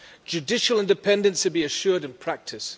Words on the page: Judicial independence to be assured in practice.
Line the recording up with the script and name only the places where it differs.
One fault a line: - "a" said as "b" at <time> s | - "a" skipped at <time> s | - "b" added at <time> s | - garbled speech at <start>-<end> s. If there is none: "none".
none